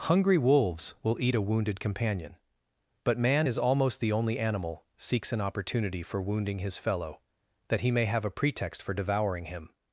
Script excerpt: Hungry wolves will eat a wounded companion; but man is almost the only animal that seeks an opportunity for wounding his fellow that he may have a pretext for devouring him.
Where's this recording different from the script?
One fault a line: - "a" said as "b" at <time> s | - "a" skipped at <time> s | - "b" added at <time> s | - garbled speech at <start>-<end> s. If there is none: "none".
- "that" skipped at 4.8 s